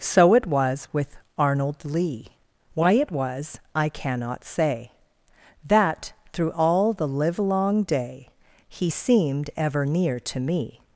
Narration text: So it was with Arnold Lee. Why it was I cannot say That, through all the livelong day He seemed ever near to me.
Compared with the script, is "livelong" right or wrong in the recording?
right